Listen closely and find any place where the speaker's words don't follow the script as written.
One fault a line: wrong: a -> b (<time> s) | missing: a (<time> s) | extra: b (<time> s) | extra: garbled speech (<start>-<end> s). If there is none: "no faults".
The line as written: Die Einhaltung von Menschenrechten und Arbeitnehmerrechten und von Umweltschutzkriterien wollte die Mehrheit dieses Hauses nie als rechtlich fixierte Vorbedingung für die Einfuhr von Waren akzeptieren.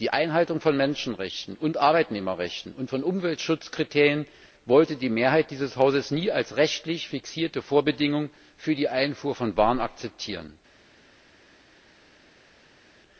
no faults